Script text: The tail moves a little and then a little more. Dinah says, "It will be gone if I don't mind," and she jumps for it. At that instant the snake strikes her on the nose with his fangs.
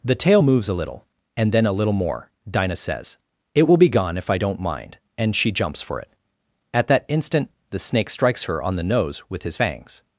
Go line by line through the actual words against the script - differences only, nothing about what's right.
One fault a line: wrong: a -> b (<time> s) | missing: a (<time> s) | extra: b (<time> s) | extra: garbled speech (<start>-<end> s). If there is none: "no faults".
no faults